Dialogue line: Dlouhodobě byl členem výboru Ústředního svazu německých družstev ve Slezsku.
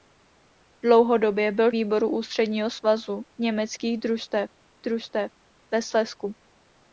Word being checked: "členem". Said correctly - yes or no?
no